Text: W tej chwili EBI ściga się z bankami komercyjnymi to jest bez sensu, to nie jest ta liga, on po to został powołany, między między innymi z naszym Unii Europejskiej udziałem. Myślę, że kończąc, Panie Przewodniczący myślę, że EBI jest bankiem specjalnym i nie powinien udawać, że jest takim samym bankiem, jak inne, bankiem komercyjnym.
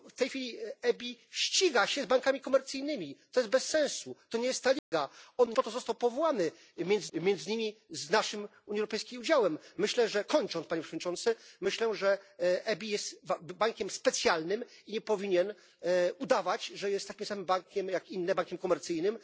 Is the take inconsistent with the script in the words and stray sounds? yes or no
yes